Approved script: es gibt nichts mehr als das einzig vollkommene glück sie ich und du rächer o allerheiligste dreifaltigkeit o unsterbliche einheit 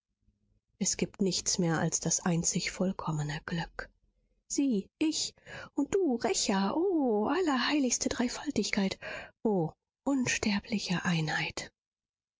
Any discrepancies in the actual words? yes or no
no